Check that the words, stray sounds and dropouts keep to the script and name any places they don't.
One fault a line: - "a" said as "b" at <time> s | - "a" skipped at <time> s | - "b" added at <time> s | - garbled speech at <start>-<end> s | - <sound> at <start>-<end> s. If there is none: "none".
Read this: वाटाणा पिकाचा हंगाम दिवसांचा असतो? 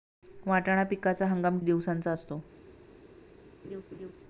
- laugh at 3.6-4.1 s